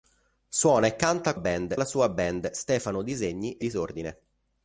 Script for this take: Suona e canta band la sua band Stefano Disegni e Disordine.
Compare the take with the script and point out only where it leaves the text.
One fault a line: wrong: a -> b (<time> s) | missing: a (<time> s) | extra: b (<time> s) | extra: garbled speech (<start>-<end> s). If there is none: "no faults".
no faults